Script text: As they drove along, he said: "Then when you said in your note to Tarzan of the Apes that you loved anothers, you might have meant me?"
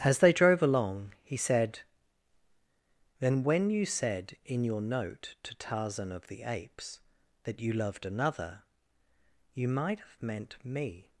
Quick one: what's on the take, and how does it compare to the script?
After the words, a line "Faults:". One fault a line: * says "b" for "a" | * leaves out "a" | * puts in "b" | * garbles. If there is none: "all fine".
As they drove along, he said: "Then when you said in your note to Tarzan of the Apes that you loved another, you might have meant me?"
Faults:
* says "another" for "anothers"